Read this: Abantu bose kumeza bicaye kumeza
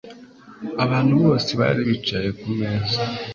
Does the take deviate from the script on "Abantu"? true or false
false